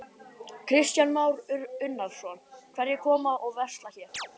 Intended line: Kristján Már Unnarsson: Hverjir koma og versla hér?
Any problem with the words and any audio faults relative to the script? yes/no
yes